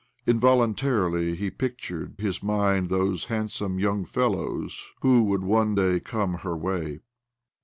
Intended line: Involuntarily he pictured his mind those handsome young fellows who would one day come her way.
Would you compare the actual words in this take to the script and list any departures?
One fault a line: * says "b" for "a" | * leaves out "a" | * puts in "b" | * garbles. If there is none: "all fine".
all fine